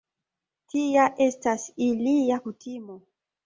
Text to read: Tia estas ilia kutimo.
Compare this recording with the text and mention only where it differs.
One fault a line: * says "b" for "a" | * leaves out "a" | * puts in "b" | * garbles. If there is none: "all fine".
all fine